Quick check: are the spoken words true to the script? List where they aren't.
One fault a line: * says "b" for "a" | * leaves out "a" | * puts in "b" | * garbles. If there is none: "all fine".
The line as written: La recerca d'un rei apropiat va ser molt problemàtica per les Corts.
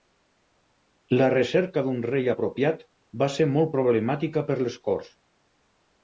all fine